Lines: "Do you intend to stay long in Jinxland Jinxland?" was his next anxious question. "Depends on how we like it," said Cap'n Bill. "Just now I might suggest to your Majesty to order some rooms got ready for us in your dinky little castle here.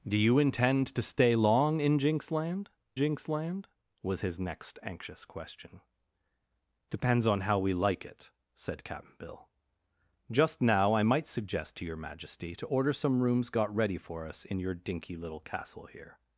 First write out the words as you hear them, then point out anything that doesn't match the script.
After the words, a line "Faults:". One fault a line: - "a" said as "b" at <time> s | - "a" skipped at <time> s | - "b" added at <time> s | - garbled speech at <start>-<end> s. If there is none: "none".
"Do you intend to stay long in Jinxland Jinxland?" was his next anxious question. "Depends on how we like it," said Cap'n Bill. "Just now I might suggest to your Majesty to order some rooms got ready for us in your dinky little castle here.
Faults:
none